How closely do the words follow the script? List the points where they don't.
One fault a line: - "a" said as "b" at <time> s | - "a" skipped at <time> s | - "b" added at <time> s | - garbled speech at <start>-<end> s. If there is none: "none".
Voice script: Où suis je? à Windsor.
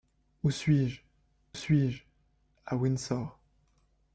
- "suis je" added at 1.5 s